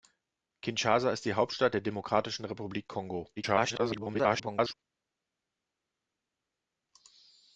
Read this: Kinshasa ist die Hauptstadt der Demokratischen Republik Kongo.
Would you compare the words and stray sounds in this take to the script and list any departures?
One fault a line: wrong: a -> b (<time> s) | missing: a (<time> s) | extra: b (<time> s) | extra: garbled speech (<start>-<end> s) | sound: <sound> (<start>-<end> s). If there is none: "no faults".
extra: garbled speech (3.4-4.7 s)